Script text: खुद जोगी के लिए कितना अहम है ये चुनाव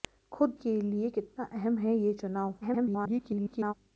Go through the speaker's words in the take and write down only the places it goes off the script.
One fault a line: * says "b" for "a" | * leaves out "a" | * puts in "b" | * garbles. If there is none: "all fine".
* leaves out "जोगी"
* garbles